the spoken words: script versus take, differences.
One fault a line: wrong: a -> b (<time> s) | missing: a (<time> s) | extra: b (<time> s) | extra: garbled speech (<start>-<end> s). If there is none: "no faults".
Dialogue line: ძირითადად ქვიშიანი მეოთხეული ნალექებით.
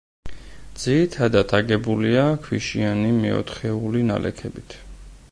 extra: აგებულია (1.6 s)